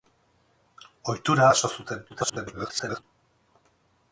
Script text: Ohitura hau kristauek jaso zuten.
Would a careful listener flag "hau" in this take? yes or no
yes